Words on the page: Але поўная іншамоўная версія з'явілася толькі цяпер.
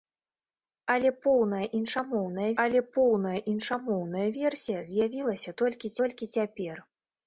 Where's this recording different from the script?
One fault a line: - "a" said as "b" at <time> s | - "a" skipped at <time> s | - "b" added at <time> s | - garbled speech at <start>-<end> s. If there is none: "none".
- "але поўная іншамоўная" added at 2.6 s
- "толькі" added at 6.0 s